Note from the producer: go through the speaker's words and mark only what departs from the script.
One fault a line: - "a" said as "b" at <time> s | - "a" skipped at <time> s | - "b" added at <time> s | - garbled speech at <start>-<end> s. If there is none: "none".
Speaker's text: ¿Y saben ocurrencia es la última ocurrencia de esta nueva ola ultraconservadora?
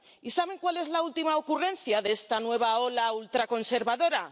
- "ocurrencia" said as "cuál" at 0.6 s